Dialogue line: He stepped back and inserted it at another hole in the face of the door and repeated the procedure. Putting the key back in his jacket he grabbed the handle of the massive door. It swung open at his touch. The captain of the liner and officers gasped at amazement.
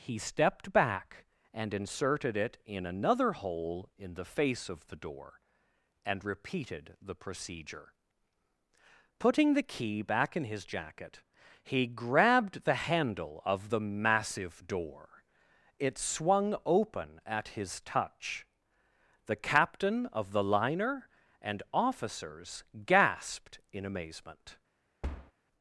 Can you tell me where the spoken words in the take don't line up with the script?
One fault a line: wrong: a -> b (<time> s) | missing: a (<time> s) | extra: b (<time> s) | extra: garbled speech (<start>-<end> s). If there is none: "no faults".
wrong: at -> in (2.6 s)
wrong: at -> in (23.7 s)